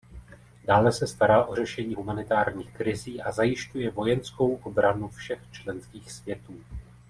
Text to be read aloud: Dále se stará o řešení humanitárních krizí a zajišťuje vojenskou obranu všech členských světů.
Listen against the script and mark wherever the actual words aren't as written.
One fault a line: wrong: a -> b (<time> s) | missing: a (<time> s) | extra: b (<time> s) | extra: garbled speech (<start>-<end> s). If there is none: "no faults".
no faults